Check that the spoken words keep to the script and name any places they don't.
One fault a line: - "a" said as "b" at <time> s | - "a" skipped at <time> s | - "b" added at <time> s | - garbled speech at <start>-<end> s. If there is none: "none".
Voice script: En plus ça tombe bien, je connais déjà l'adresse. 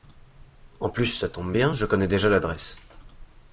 none